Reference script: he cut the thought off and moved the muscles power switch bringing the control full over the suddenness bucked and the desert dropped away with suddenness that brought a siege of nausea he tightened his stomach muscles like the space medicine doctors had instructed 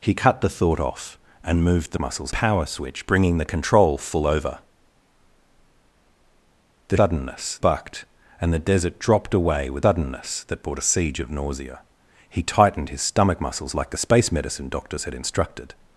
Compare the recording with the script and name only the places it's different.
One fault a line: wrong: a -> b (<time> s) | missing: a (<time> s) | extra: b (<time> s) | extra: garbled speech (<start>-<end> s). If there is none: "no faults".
no faults